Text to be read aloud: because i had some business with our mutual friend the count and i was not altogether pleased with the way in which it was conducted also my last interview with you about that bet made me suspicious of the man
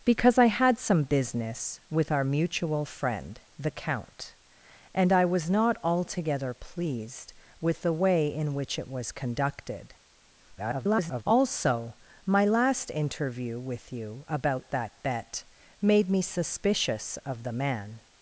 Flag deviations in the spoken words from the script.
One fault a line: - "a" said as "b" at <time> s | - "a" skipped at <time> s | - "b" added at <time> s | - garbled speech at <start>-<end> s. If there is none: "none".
- garbled speech at 10.6-11.2 s